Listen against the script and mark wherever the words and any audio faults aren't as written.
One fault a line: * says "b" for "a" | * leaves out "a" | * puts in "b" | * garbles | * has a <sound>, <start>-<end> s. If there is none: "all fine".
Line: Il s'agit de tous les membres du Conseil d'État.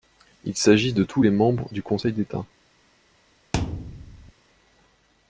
* has a thud, 3.5-4.3 s